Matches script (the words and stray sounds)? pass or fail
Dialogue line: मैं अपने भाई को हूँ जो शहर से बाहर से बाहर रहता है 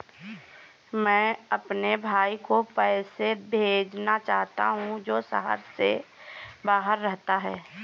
fail